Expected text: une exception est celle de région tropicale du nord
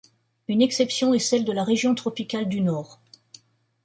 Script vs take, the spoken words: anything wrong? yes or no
yes